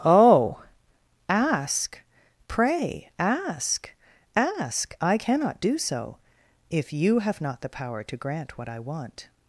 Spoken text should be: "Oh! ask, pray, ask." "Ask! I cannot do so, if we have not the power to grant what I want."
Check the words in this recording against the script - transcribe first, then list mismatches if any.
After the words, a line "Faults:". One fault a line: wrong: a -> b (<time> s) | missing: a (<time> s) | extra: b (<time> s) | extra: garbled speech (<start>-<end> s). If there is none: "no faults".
"Oh! ask, pray, ask." "Ask! I cannot do so, if you have not the power to grant what I want."
Faults:
wrong: we -> you (6.9 s)